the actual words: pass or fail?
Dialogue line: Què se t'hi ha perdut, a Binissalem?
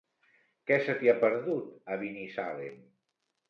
pass